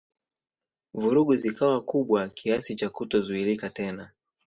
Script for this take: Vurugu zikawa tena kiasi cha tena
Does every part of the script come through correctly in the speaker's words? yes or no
no